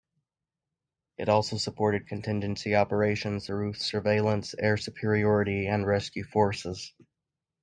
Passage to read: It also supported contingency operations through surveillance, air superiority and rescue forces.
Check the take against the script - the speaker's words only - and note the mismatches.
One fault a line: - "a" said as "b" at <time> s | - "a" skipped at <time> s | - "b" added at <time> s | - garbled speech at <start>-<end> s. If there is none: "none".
none